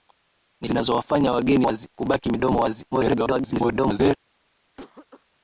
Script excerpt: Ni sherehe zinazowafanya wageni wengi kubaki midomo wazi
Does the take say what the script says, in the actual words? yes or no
no